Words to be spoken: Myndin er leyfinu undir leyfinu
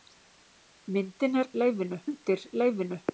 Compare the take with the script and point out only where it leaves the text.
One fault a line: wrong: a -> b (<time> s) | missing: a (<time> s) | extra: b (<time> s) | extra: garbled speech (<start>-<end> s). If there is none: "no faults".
no faults